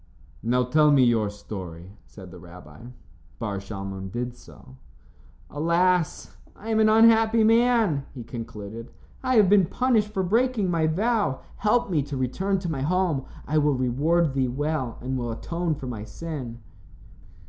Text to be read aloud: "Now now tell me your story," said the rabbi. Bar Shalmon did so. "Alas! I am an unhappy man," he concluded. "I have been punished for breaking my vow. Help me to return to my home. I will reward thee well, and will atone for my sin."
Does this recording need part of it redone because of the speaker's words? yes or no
yes